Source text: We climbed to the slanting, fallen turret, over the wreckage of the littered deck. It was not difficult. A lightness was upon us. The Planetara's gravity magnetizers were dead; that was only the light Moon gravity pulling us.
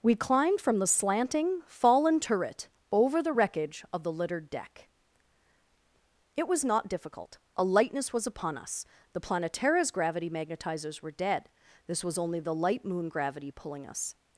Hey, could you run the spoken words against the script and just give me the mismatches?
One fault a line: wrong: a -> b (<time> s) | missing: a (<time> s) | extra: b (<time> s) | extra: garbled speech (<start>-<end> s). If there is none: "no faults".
wrong: to -> from (0.6 s)
wrong: that -> this (11.9 s)